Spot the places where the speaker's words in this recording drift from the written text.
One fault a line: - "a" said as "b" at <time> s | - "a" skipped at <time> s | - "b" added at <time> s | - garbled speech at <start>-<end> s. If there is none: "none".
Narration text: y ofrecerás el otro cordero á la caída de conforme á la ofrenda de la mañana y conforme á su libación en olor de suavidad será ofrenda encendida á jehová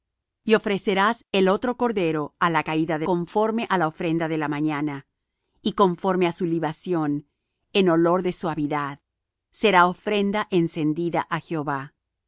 none